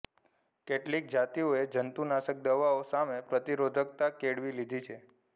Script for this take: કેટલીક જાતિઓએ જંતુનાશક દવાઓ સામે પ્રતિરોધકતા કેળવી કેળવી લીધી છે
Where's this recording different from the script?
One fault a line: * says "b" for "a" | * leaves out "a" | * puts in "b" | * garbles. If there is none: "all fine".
* leaves out "કેળવી"